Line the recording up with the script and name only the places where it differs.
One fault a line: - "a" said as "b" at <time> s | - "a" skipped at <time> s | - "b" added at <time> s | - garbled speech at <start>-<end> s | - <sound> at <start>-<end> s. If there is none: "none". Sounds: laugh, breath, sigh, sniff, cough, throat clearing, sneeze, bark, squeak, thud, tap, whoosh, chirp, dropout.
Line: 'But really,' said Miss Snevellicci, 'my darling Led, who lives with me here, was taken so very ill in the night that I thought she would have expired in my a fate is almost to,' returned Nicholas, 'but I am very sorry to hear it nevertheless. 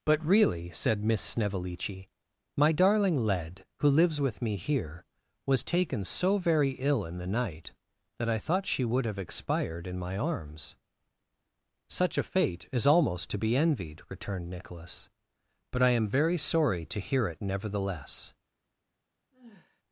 - "arms Such" added at 10.2 s
- "be envied" added at 13.4 s
- sigh at 19.3-19.8 s